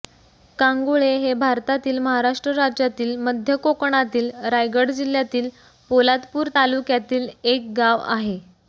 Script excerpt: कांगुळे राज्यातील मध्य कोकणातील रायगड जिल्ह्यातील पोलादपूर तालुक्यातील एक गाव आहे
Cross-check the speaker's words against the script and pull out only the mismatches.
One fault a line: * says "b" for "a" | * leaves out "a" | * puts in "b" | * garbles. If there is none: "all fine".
* puts in "हे भारतातील महाराष्ट्र"